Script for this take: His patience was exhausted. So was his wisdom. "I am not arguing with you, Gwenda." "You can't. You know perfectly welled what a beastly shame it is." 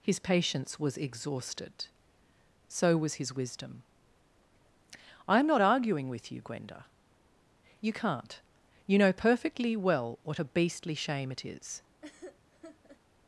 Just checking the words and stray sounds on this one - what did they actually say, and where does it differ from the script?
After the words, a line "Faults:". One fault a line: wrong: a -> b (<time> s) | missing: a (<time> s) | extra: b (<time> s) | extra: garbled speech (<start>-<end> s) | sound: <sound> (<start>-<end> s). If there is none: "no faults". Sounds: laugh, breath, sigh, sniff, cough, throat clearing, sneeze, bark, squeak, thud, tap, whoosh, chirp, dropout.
His patience was exhausted. So was his wisdom. "I am not arguing with you, Gwenda." "You can't. You know perfectly well what a beastly shame it is."
Faults:
wrong: welled -> well (9.8 s)
sound: laugh (12.0-13.0 s)